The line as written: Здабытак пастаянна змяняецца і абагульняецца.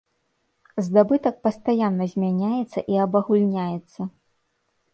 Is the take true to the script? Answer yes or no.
yes